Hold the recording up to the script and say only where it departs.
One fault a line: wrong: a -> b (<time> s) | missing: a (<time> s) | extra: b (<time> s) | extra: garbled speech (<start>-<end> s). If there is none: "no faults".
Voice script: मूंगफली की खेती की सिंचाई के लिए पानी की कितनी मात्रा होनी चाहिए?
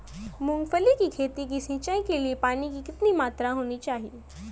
no faults